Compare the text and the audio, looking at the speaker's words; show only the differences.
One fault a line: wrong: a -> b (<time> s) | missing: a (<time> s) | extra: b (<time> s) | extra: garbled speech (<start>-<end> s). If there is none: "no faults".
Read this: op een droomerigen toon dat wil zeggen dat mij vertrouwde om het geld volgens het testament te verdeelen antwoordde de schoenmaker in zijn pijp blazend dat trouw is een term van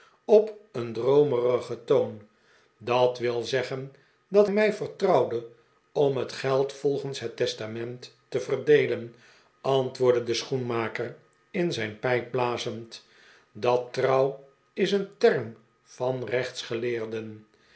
no faults